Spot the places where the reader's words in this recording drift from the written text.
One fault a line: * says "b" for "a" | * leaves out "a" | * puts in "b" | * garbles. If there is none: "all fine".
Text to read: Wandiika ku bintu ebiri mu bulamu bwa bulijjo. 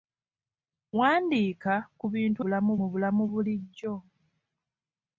* says "bulamu" for "ebiri"
* leaves out "bwa"